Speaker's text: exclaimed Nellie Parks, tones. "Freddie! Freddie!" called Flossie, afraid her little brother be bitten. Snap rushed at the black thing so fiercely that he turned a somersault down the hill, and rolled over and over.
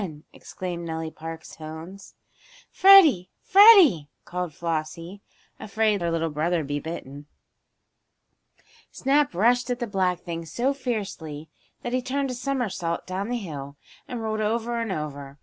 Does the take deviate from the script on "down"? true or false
false